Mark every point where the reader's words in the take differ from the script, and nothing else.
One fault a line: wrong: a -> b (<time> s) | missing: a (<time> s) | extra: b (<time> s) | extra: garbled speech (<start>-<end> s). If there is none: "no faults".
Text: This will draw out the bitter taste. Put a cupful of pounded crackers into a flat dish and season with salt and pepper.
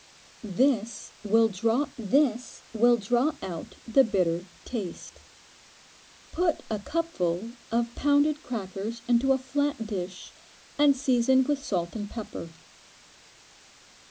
extra: this will draw (2.0 s)